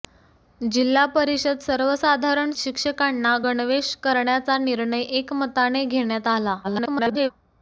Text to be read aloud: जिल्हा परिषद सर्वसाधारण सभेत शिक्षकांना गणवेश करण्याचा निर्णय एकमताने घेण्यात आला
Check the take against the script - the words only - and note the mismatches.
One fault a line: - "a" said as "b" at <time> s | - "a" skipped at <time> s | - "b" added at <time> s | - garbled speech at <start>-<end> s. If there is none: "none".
- "सभेत" skipped at 2.5 s
- garbled speech at 6.6-7.3 s